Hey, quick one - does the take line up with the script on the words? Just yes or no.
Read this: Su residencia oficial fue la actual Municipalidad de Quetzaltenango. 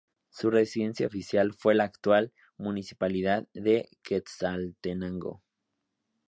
yes